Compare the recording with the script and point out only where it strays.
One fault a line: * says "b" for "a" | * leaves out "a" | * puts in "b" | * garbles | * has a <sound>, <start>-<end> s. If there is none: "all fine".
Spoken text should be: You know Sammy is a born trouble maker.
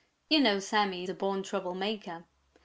all fine